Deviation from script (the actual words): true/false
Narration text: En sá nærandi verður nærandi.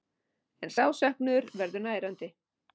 true